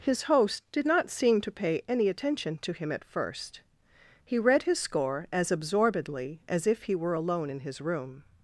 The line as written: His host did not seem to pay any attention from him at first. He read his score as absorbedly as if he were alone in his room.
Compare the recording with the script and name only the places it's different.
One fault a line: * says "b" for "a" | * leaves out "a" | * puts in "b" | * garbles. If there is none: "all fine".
* says "to" for "from"